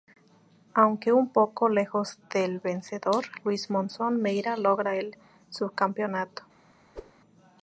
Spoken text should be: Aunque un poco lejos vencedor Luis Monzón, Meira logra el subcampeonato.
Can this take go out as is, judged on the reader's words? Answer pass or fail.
fail